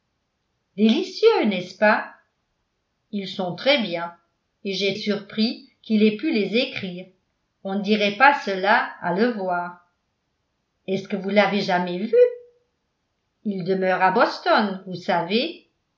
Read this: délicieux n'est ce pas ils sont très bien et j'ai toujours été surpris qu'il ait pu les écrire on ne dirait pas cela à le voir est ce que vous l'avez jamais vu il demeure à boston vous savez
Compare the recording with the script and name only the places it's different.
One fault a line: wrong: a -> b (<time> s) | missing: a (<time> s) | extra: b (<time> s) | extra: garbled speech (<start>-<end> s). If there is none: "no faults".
missing: toujours été (5.0 s)